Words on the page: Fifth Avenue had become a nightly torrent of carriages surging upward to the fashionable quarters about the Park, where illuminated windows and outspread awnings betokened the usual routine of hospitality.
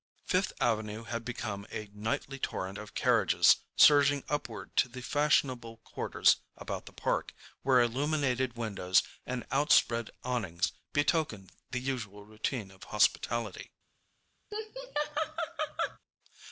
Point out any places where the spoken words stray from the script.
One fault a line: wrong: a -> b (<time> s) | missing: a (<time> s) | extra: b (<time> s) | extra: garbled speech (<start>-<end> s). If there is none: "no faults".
no faults